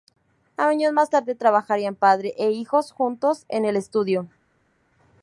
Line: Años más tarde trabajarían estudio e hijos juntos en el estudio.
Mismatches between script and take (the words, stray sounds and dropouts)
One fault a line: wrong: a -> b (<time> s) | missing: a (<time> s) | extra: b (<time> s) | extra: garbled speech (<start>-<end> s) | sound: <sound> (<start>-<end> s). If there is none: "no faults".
wrong: estudio -> padre (1.9 s)